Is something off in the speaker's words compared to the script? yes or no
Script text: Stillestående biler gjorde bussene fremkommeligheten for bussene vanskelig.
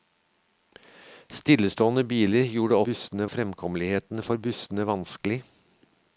no